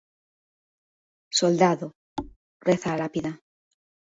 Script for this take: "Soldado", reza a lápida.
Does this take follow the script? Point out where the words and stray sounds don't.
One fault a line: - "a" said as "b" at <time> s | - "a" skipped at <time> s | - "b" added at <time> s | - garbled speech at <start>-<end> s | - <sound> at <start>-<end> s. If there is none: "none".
- thud at 2.2-2.4 s